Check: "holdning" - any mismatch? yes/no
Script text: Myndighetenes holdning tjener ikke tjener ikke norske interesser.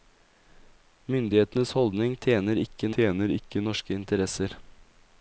no